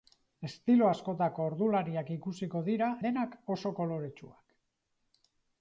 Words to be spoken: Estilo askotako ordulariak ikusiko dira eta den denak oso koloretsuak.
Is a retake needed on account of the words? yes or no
yes